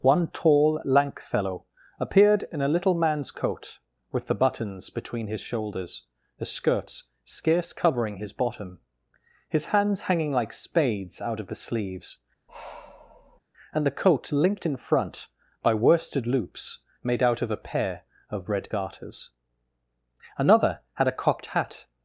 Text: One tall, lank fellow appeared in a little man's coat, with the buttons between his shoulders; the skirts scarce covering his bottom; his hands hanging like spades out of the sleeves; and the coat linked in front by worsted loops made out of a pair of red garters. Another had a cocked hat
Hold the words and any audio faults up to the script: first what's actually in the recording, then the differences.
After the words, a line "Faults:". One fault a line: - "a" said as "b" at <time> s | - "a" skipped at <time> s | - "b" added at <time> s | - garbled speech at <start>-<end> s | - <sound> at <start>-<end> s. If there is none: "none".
One tall, lank fellow appeared in a little man's coat, with the buttons between his shoulders; the skirts scarce covering his bottom; his hands hanging like spades out of the sleeves; and the coat linked in front by worsted loops made out of a pair of red garters. Another had a cocked hat
Faults:
- sigh at 12.5-13.4 s